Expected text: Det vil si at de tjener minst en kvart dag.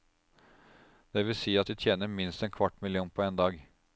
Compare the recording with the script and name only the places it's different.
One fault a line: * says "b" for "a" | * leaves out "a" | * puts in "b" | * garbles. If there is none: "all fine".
* puts in "million på en"